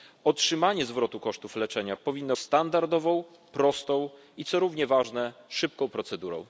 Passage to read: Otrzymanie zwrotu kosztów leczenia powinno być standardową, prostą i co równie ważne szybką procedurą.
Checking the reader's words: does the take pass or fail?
fail